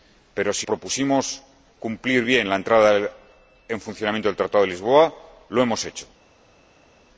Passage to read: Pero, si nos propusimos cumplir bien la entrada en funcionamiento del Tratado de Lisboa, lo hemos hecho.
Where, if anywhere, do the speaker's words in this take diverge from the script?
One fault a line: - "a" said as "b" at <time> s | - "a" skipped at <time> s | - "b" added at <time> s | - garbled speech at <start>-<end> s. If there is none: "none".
- "nos" skipped at 0.7 s